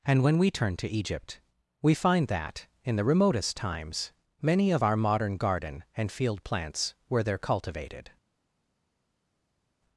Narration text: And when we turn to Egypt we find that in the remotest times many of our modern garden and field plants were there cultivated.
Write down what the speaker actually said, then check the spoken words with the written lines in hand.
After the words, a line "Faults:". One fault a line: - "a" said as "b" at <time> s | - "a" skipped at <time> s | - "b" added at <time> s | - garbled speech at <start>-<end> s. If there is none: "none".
And when we turn to Egypt we find that in the remotest times many of our modern garden and field plants were there cultivated.
Faults:
none